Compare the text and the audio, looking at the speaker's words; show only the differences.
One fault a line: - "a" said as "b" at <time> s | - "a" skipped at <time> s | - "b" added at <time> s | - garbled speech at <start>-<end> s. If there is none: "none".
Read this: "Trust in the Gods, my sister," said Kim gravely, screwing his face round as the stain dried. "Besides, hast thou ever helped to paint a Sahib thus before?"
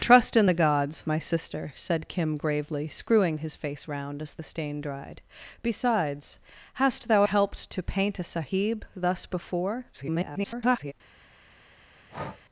- "ever" skipped at 7.2 s
- garbled speech at 9.9-10.9 s